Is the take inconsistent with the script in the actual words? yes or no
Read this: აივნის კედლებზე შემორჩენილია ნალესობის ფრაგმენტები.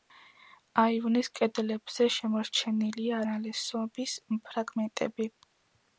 no